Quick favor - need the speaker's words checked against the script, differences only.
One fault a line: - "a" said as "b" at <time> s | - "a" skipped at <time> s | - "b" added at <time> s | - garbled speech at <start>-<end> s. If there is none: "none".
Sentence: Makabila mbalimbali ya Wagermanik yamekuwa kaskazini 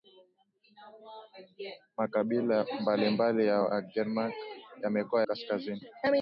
none